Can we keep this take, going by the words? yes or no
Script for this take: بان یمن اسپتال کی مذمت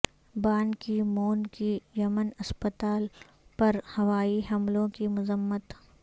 no